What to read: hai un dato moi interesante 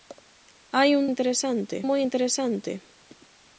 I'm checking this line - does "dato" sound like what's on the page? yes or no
no